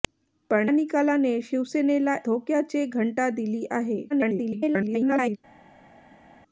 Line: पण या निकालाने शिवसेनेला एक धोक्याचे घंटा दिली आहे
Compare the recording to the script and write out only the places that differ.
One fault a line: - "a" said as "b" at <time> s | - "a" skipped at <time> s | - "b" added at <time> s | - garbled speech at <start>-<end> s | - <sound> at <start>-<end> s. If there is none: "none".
- "या" skipped at 0.7 s
- "एक" skipped at 2.2 s
- garbled speech at 4.1-5.4 s